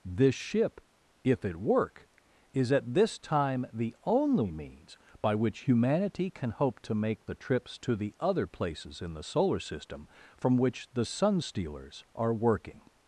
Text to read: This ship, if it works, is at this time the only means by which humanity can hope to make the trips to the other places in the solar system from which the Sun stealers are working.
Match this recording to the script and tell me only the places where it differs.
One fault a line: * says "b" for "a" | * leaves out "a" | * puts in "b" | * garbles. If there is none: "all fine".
* says "work" for "works"